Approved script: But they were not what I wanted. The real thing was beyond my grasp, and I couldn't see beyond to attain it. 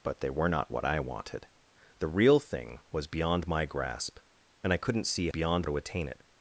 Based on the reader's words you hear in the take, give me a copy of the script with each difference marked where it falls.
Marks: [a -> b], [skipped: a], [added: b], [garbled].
But they were not what I wanted. The real thing was beyond my grasp, and I couldn't see beyond to attain it.